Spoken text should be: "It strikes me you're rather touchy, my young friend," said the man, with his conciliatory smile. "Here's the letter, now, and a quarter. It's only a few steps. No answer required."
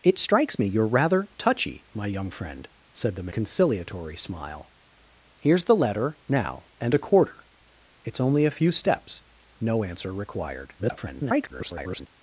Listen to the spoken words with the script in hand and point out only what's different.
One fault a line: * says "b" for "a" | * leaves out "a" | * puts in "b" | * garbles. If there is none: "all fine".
* leaves out "man with his"
* garbles